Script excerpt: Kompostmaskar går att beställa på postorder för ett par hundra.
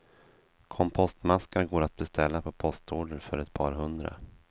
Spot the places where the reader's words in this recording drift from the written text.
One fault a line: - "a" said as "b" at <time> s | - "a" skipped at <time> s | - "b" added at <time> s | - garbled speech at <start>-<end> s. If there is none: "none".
none